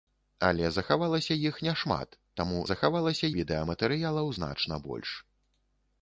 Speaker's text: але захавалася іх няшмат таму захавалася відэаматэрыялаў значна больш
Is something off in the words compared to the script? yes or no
no